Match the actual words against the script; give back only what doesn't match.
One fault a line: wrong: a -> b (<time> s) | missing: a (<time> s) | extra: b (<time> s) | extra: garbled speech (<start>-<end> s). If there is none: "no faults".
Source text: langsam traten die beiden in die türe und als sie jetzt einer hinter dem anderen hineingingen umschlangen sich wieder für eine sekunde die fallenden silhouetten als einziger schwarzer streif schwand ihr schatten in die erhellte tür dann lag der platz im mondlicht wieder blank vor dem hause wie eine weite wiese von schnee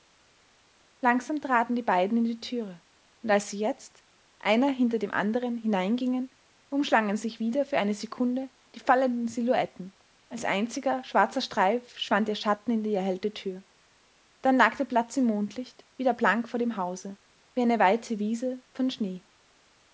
no faults